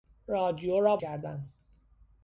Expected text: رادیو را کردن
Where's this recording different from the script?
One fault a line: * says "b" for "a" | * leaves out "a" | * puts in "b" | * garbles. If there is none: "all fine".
all fine